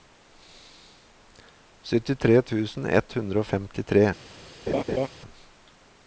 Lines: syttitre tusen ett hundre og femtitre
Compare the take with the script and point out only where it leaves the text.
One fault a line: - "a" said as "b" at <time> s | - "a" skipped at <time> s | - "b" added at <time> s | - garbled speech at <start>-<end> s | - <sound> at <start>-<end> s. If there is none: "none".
- laugh at 4.7-5.1 s